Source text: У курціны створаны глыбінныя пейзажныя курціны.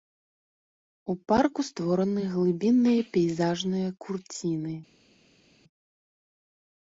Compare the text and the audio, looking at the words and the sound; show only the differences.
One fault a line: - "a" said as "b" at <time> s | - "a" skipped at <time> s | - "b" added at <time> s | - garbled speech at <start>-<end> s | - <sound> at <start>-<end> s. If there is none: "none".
- "курціны" said as "парку" at 1.3 s